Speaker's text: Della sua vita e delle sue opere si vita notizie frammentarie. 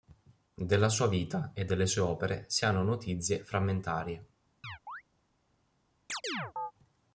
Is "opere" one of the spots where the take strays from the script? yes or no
no